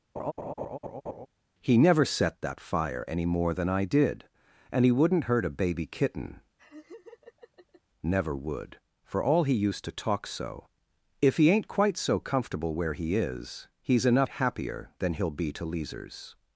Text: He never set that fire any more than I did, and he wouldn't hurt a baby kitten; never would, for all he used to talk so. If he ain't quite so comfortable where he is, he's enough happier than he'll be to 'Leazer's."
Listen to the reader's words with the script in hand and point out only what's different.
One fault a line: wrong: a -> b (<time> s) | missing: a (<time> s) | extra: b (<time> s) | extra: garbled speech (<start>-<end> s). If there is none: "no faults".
no faults